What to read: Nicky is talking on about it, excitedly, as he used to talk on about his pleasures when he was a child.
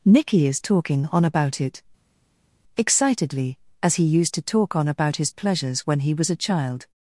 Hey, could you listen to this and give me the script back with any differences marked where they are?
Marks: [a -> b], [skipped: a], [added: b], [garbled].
Nicky is talking on about it, excitedly, as he used to talk on about his pleasures when he was a child.